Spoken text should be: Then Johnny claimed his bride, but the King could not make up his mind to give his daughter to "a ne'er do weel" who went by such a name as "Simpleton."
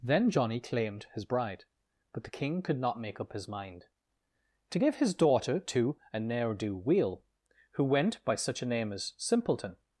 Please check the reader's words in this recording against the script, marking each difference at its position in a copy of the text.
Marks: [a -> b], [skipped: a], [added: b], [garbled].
Then Johnny claimed his bride, but the King could not make up his mind to give his daughter to "a ne'er do weel" who went by such a name as "Simpleton."